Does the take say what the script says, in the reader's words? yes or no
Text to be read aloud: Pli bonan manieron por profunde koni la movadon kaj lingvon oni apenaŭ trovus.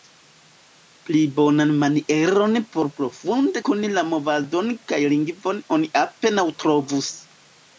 yes